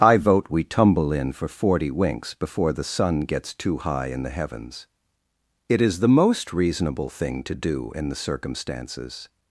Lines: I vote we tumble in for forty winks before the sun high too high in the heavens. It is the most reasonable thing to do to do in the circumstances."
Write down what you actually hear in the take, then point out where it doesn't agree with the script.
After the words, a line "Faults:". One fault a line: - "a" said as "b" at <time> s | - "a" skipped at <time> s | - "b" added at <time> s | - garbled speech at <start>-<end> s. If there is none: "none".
I vote we tumble in for forty winks before the sun gets too high in the heavens. It is the most reasonable thing to do in the circumstances."
Faults:
- "high" said as "gets" at 3.2 s
- "to do" skipped at 7.9 s